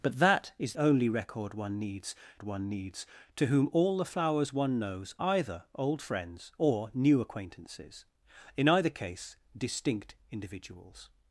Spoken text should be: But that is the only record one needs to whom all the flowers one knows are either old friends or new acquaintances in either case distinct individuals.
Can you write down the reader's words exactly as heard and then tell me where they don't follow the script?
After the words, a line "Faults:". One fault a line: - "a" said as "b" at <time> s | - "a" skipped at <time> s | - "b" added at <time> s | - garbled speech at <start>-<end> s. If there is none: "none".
But that is only record one needs one needs to whom all the flowers one knows either old friends or new acquaintances in either case distinct individuals.
Faults:
- "the" skipped at 0.7 s
- "one needs" added at 2.4 s
- "are" skipped at 5.1 s